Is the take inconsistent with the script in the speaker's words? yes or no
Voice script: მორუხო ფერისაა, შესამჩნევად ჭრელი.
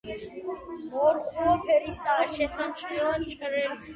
no